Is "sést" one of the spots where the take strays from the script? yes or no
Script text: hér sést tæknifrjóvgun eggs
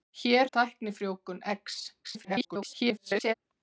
yes